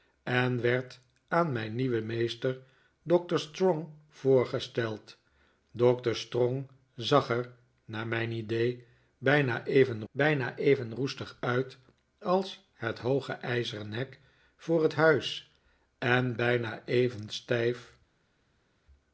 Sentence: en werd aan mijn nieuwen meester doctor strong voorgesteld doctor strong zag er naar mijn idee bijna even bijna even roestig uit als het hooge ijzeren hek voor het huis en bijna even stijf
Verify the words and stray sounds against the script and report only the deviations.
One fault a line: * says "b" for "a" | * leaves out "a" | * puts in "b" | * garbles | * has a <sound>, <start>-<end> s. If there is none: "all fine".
all fine